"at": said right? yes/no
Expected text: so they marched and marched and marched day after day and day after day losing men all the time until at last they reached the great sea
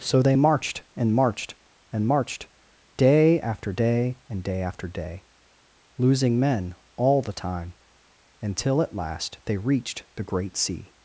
yes